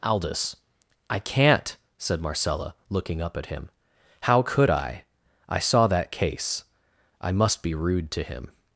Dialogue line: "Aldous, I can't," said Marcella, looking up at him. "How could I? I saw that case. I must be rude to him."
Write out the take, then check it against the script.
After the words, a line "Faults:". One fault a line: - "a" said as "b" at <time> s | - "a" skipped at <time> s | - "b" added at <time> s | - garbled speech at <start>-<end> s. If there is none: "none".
"Aldous, I can't," said Marcella, looking up at him. "How could I? I saw that case. I must be rude to him."
Faults:
none